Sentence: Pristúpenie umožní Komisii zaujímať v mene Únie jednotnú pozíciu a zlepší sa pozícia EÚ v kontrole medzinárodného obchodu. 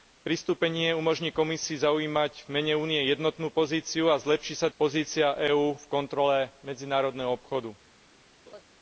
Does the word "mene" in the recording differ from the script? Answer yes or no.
no